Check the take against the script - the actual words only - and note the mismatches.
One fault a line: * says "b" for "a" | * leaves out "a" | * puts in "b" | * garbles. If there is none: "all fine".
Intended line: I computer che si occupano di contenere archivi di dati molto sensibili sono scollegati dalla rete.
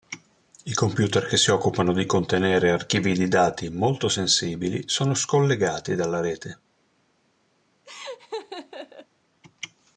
all fine